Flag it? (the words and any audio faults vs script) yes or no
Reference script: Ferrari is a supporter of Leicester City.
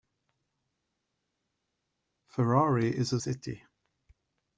yes